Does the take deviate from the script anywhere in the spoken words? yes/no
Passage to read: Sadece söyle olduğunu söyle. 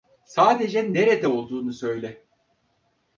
yes